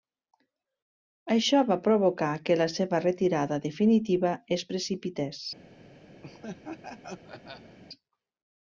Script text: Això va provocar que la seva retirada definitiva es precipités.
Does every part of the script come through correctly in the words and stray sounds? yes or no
no